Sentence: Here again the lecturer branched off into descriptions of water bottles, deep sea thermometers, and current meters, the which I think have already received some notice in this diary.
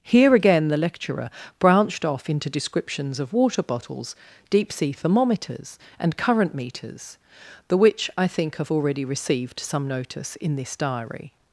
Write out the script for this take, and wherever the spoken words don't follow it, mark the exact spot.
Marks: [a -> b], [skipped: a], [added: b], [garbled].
Here again the lecturer branched off into descriptions of water bottles, deep sea thermometers, and current meters, the which I think have already received some notice in this diary.